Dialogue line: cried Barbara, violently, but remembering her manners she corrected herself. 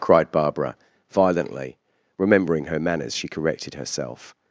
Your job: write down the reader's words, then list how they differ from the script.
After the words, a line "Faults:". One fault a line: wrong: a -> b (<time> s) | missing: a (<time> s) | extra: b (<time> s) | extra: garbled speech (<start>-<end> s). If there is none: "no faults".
cried Barbara, violently, remembering her manners she corrected herself.
Faults:
missing: but (1.8 s)